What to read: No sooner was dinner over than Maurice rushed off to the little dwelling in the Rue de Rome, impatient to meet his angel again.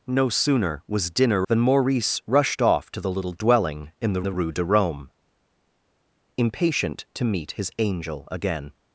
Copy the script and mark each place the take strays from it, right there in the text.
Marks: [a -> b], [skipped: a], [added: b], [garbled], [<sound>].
No sooner was dinner [skipped: over] than Maurice rushed off to the little dwelling in the [added: the] Rue de Rome, impatient to meet his angel again.